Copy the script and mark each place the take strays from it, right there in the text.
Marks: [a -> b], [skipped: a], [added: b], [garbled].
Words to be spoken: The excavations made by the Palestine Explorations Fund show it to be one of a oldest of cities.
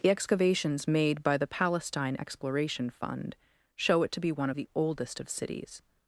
The excavations made by the Palestine [Explorations -> Exploration] Fund show it to be one of [a -> the] oldest of cities.